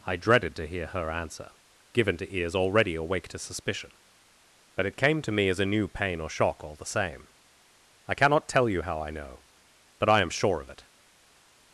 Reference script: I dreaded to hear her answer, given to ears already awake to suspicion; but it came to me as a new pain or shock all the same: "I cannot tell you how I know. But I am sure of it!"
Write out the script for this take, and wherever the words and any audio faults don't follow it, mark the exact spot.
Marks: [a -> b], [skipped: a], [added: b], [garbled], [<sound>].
I dreaded to hear her answer, given to ears already awake to suspicion; but it came to me as a new pain or shock all the same: "I cannot tell you how I know. But I am sure of it!"